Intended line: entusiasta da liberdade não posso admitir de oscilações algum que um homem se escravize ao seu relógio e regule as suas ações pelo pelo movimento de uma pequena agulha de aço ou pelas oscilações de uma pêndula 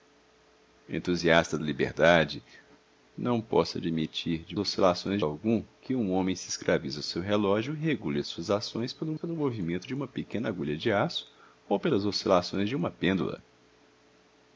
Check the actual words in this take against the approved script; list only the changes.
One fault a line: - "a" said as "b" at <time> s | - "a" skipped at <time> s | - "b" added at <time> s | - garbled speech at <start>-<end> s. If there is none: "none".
none